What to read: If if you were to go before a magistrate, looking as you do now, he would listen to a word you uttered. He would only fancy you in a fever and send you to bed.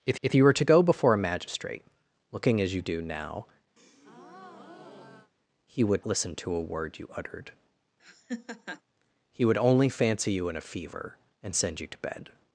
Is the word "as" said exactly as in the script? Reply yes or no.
yes